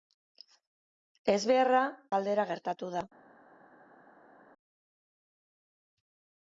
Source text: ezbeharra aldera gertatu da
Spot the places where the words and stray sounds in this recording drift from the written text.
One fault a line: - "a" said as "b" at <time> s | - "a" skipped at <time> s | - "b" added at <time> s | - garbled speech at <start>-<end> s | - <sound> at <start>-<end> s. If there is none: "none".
none